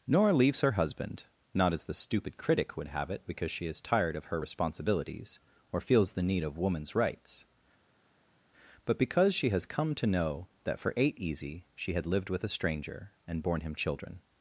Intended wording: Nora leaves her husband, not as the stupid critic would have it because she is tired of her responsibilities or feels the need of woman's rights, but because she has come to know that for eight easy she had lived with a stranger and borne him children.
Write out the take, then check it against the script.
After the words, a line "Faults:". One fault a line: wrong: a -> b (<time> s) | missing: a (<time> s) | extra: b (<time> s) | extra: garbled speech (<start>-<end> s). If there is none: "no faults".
Nora leaves her husband, not as the stupid critic would have it because she is tired of her responsibilities or feels the need of woman's rights, but because she has come to know that for eight easy she had lived with a stranger and borne him children.
Faults:
no faults